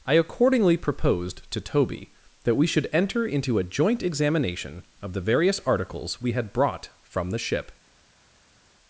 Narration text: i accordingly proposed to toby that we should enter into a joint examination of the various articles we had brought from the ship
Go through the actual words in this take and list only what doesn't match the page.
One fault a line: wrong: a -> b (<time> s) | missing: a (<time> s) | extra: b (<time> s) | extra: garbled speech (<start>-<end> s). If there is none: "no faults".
no faults